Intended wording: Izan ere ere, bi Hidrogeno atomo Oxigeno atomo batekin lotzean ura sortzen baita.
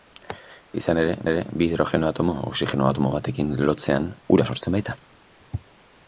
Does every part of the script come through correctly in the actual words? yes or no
yes